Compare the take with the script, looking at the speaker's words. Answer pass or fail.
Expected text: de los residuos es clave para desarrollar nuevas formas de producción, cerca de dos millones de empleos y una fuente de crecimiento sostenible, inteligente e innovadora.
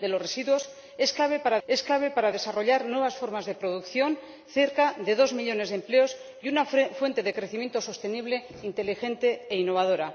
fail